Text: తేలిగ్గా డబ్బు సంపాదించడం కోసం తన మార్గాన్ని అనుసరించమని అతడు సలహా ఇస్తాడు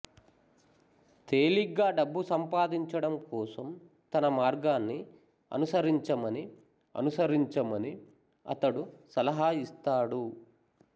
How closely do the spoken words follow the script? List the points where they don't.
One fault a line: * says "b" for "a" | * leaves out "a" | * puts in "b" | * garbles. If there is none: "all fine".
* puts in "అనుసరించమని"